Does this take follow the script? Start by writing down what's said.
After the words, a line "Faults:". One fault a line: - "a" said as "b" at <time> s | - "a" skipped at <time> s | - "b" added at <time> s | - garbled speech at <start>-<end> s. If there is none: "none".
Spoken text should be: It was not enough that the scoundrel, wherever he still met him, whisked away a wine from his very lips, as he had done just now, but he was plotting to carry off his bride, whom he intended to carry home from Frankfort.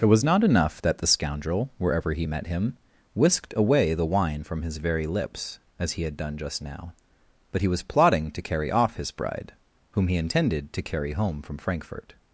It was not enough that the scoundrel, wherever he met him, whisked away the wine from his very lips, as he had done just now, but he was plotting to carry off his bride, whom he intended to carry home from Frankfort.
Faults:
- "still" skipped at 2.2 s
- "a" said as "the" at 3.9 s